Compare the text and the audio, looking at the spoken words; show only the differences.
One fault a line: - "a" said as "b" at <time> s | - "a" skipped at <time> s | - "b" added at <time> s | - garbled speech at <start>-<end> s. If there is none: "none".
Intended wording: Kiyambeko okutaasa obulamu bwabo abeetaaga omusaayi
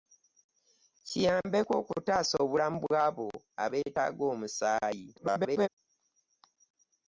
- garbled speech at 5.2-5.7 s